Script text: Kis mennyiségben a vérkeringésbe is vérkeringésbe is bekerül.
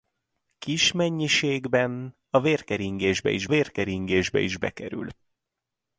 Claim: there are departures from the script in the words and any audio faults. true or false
false